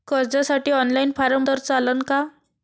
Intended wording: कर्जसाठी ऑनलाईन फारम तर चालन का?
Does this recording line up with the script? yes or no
yes